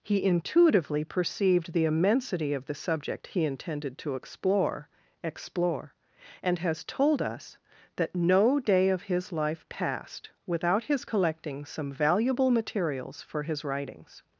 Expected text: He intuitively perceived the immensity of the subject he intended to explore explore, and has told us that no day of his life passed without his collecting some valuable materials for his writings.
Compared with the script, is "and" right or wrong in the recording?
right